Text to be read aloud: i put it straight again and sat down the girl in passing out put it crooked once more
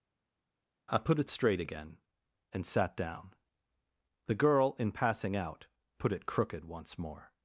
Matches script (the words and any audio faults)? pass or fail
pass